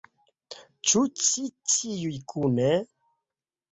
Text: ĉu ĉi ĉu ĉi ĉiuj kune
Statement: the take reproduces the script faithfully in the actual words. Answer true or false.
false